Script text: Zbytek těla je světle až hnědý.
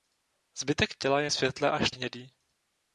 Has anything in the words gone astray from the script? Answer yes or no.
no